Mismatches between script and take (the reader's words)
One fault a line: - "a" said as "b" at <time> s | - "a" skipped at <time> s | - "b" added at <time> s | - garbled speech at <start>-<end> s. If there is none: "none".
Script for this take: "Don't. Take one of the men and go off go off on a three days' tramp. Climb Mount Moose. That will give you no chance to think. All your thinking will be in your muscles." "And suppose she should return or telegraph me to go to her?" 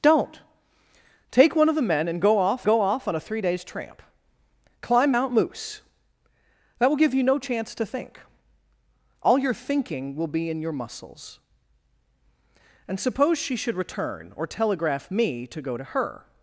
none